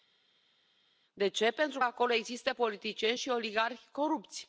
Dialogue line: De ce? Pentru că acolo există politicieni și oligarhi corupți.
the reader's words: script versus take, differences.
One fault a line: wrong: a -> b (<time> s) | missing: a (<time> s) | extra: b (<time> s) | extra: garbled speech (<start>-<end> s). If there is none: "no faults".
no faults